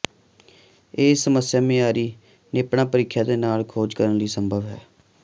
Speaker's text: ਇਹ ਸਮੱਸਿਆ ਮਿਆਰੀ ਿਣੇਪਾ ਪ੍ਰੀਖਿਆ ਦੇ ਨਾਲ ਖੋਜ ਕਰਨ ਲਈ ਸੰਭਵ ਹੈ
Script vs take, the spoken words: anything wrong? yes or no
no